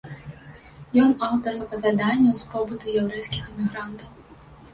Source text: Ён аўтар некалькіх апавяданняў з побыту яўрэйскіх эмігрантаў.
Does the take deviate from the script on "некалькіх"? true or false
true